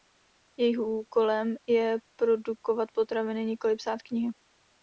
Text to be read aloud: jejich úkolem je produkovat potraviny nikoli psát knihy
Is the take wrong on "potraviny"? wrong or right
right